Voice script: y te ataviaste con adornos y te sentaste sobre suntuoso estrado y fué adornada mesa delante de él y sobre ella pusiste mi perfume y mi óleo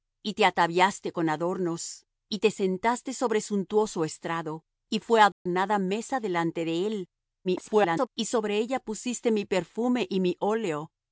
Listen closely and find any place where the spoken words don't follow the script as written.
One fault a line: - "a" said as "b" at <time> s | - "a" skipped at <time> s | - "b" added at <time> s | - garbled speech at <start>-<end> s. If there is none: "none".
- garbled speech at 7.4-8.1 s